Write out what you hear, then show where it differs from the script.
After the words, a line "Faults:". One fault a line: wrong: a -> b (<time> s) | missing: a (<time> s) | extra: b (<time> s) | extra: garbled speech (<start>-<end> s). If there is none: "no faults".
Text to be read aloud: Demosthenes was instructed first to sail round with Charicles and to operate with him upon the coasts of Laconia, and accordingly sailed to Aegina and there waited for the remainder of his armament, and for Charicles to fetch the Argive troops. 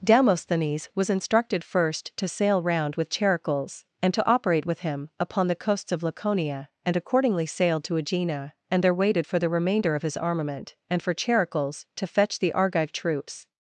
Demosthenes was instructed first to sail round with Charicles and to operate with him upon the coasts of Laconia, and accordingly sailed to Aegina and there waited for the remainder of his armament, and for Charicles to fetch the Argive troops.
Faults:
no faults